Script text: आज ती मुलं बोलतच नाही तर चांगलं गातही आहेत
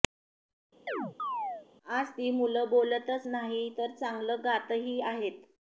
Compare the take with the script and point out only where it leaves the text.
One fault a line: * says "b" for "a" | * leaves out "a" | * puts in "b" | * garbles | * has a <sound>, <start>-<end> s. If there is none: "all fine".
* has a chirp, 0.9-1.7 s